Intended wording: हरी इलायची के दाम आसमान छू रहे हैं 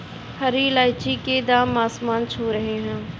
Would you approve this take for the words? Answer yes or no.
yes